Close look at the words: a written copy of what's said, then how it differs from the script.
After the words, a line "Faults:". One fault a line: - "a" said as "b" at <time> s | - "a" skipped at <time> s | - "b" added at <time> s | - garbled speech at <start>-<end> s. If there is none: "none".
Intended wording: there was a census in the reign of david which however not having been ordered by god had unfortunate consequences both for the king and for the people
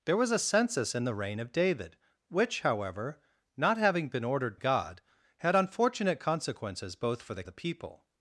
there was a census in the reign of david which however not having been ordered god had unfortunate consequences both for the the people
Faults:
- "by" skipped at 4.6 s
- "king and for" skipped at 7.4 s